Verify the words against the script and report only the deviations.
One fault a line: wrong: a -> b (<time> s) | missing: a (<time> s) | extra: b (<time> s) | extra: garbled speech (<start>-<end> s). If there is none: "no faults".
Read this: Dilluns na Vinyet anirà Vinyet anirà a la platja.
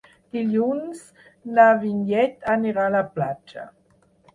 missing: Vinyet anirà (2.9 s)